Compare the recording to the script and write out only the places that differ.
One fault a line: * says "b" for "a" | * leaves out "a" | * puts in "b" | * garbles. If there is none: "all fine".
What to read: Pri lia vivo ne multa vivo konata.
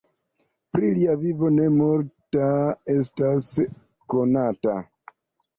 * says "estas" for "vivo"